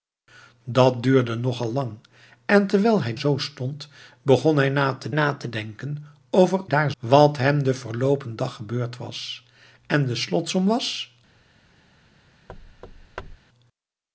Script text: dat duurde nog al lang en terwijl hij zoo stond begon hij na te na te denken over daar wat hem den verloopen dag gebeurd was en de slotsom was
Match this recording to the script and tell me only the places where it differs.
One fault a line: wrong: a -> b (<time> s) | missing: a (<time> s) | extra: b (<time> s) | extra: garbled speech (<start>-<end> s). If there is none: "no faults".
no faults